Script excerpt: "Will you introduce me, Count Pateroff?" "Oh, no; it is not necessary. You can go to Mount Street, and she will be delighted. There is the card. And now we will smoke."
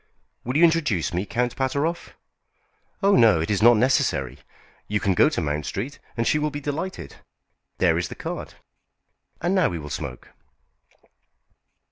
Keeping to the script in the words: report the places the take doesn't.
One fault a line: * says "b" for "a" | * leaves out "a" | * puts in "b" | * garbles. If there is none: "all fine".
all fine